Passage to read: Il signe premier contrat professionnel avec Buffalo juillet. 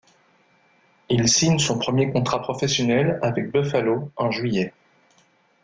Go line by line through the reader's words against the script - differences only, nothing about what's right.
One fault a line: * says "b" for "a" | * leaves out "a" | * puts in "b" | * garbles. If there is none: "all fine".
* puts in "son"
* puts in "en"